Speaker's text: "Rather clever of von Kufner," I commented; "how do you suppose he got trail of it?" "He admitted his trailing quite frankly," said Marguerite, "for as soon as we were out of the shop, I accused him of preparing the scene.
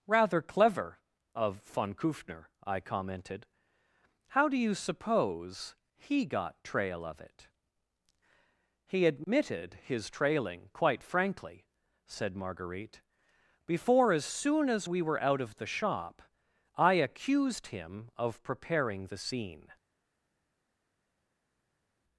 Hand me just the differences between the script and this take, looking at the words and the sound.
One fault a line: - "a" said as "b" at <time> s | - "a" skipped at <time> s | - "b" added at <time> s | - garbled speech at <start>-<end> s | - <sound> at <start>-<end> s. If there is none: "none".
- "for" said as "before" at 13.7 s